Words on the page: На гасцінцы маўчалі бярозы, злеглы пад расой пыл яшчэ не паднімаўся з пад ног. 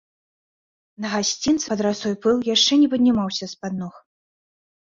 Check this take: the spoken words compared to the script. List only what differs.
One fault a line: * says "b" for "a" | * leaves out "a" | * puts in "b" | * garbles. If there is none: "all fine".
* leaves out "маўчалі бярозы злеглы"